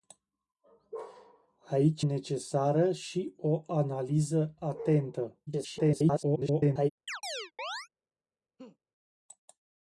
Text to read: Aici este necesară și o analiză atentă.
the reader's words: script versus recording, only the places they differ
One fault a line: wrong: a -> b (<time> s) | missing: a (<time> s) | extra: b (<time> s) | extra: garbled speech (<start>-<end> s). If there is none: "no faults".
missing: este (2.0 s)
extra: garbled speech (5.5-6.9 s)